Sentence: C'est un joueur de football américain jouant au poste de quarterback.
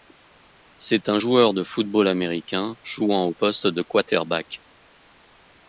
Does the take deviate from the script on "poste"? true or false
false